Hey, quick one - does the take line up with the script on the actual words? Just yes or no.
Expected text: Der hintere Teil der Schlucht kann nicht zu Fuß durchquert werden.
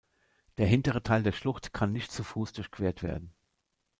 yes